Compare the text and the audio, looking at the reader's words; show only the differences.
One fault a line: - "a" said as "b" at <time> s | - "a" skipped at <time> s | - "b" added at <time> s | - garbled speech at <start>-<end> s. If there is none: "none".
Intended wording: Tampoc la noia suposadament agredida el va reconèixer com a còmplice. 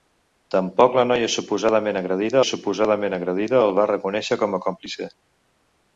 - "suposadament agredida" added at 2.5 s